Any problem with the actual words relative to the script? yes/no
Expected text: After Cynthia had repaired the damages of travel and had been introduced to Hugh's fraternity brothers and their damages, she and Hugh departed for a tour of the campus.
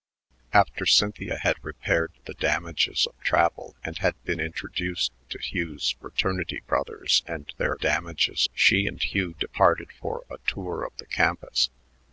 no